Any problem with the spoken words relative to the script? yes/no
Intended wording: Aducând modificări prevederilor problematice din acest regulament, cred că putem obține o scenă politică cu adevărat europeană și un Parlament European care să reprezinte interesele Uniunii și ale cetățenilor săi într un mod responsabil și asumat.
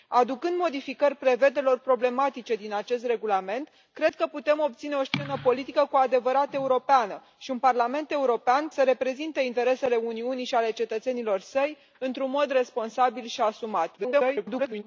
yes